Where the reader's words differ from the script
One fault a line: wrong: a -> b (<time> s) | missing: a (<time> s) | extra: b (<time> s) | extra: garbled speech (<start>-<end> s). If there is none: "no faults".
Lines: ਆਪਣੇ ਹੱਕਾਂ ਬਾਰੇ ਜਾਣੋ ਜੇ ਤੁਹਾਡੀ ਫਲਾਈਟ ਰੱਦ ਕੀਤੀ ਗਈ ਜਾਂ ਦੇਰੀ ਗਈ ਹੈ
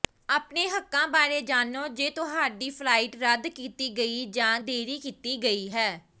extra: ਕੀਤੀ (5.0 s)